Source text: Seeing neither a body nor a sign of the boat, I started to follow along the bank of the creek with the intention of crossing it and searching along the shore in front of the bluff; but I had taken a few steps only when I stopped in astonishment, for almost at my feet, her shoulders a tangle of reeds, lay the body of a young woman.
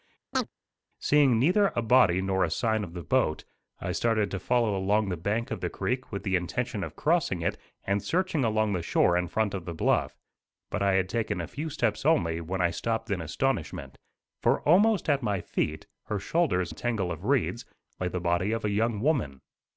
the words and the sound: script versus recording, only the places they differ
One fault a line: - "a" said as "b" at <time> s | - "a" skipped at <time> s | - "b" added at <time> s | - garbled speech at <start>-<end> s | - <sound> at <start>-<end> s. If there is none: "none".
- chirp at 0.3-0.5 s